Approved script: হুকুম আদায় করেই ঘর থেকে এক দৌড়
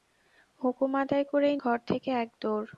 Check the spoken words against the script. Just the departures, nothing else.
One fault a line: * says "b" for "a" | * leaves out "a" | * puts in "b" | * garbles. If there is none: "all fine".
all fine